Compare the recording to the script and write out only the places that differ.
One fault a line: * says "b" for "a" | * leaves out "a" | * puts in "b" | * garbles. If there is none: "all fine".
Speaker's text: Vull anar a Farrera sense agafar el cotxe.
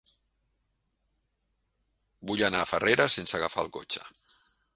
all fine